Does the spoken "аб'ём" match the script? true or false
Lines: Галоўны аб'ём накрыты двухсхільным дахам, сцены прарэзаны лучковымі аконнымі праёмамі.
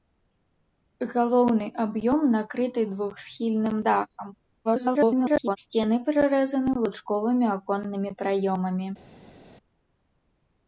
true